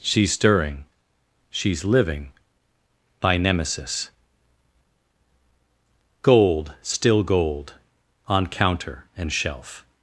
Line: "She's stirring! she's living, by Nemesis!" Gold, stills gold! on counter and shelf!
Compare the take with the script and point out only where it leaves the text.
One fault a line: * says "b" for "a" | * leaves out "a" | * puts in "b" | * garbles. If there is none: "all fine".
* says "still" for "stills"